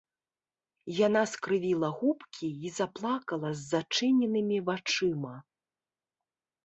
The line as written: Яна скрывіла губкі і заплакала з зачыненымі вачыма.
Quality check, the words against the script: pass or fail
pass